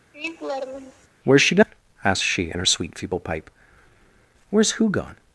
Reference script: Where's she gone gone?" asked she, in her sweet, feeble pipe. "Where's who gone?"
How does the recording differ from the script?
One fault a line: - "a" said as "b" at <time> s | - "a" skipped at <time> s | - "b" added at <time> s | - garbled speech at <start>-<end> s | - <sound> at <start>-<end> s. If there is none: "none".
- laugh at 0.1-1.1 s
- "gone" skipped at 1.7 s